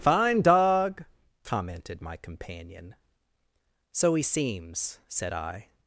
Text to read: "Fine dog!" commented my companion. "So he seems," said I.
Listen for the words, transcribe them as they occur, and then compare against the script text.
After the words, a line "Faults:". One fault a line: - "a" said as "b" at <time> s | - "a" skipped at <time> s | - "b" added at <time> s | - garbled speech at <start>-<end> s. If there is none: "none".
"Fine dog!" commented my companion. "So he seems," said I.
Faults:
none